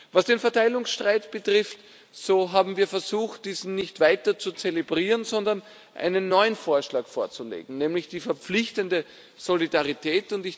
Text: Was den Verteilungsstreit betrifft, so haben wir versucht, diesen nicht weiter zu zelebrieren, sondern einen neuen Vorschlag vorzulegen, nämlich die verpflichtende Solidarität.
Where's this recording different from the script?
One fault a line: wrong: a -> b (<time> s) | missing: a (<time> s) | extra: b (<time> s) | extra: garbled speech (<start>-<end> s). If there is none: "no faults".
no faults